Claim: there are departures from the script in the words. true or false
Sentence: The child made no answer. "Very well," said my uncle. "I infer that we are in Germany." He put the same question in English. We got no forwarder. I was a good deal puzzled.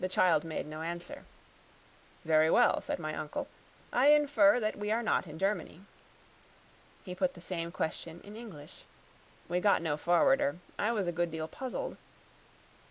true